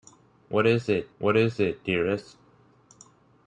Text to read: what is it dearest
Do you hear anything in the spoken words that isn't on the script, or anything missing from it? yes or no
yes